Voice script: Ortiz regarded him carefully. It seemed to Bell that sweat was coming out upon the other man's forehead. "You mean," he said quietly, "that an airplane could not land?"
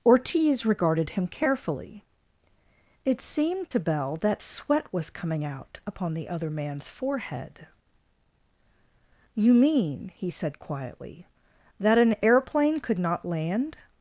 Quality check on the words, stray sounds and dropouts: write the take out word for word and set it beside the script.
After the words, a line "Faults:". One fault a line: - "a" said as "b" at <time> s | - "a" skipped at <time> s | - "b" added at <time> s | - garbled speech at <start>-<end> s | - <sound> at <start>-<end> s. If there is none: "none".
Ortiz regarded him carefully. It seemed to Bell that sweat was coming out upon the other man's forehead. "You mean," he said quietly, "that an airplane could not land?"
Faults:
none